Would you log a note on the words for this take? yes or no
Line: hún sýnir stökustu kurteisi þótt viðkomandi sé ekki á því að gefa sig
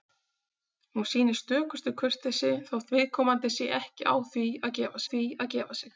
yes